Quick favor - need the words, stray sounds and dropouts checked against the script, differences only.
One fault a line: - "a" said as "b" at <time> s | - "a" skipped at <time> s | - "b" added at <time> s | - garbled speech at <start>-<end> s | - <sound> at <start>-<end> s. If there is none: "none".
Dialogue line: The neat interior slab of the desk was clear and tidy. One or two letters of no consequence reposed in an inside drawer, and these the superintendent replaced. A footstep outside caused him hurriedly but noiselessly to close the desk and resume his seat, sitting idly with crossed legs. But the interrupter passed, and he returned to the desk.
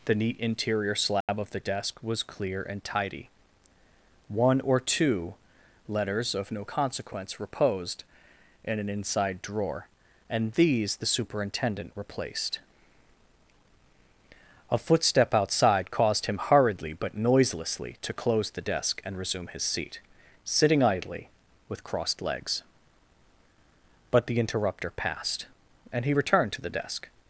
- dropout at 1.2-1.3 s